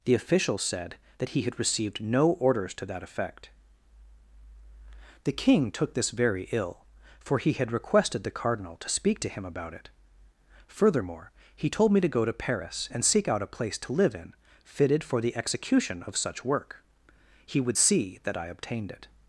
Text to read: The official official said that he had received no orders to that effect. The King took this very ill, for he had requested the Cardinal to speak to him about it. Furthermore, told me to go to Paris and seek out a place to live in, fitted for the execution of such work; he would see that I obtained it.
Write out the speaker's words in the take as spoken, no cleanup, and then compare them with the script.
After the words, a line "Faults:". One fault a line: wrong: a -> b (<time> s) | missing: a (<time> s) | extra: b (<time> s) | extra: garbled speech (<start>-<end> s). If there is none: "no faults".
The official said that he had received no orders to that effect. The King took this very ill, for he had requested the Cardinal to speak to him about it. Furthermore, he told me to go to Paris and seek out a place to live in, fitted for the execution of such work; he would see that I obtained it.
Faults:
missing: official (0.6 s)
extra: he (11.6 s)